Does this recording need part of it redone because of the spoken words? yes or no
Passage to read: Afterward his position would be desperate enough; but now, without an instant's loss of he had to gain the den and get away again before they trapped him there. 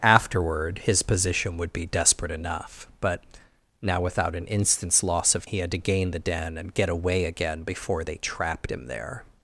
no